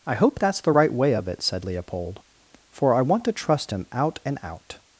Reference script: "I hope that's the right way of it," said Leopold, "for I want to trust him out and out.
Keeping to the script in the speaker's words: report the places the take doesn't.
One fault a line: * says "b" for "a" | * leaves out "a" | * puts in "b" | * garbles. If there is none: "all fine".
all fine